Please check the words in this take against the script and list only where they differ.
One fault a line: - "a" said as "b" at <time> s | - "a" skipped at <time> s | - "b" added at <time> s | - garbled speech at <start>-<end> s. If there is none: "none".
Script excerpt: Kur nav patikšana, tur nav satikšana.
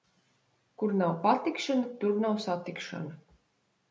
none